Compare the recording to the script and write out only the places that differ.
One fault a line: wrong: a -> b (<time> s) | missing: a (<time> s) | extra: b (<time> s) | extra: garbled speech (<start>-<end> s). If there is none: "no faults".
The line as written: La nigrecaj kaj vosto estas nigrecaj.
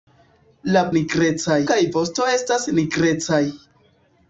no faults